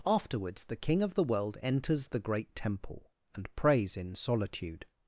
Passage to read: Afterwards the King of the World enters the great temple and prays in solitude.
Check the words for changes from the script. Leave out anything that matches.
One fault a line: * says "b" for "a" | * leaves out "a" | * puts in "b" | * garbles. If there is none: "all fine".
all fine